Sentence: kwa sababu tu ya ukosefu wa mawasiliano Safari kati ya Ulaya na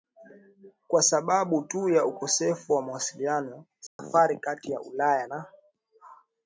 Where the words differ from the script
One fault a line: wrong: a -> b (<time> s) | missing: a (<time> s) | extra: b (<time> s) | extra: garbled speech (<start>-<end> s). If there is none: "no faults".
no faults